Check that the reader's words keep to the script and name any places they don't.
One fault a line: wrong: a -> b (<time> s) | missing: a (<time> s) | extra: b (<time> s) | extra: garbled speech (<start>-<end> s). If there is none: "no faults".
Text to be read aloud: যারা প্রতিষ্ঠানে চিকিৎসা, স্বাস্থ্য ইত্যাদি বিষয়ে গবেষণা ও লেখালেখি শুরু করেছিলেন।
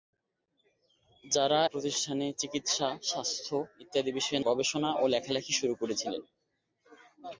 no faults